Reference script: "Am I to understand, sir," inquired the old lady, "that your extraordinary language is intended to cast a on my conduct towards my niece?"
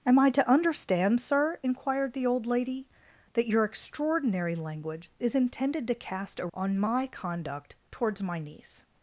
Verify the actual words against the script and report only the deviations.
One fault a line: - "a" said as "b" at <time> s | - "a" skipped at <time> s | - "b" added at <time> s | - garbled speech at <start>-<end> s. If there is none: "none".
none